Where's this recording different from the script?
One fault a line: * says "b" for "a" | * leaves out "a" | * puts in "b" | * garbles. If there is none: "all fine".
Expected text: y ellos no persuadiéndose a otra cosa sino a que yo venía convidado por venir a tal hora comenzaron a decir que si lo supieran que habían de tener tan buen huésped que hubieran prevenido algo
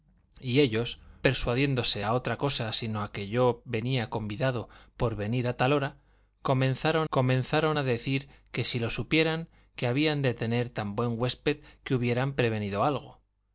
* leaves out "no"
* puts in "comenzaron"